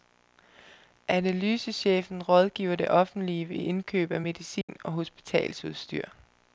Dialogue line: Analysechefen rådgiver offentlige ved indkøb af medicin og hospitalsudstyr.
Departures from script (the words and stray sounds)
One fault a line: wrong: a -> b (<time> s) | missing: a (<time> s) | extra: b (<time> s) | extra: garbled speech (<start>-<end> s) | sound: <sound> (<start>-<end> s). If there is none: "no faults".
extra: det (2.8 s)
sound: dropout (4.6-4.7 s)